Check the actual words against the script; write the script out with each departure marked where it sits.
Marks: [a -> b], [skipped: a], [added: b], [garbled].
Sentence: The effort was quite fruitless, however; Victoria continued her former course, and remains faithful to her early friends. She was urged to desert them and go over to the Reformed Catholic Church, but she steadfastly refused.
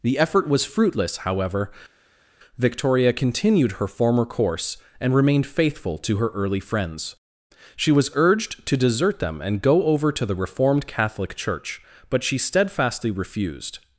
The effort was [skipped: quite] fruitless, however; Victoria continued her former course, and [remains -> remained] faithful to her early friends. She was urged to desert them and go over to the Reformed Catholic Church, but she steadfastly refused.